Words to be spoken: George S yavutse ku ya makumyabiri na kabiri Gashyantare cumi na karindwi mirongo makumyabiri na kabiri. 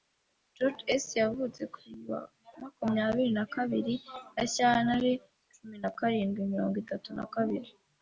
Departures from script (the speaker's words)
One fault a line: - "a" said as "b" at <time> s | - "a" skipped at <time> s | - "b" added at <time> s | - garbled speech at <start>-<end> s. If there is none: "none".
- "makumyabiri" said as "itatu" at 6.8 s